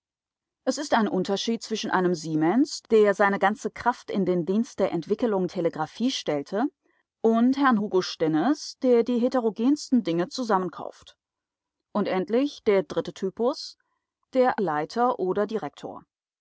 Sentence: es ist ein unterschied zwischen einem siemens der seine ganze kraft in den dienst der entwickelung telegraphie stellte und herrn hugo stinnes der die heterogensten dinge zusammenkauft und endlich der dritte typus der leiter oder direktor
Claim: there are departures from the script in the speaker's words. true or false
false